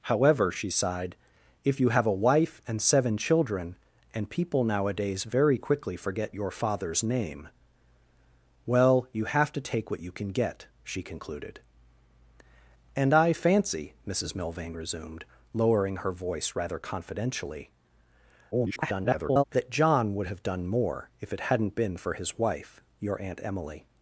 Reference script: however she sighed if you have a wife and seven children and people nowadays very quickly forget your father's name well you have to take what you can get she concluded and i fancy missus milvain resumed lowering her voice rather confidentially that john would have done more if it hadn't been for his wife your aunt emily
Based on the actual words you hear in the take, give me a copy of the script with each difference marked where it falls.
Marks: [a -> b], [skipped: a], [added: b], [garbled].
however she sighed if you have a wife and seven children and people nowadays very quickly forget your father's name well you have to take what you can get she concluded and i fancy missus milvain resumed lowering her voice rather confidentially [garbled] that john would have done more if it hadn't been for his wife your aunt emily